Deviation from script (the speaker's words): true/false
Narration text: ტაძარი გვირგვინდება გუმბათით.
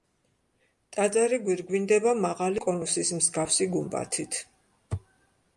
true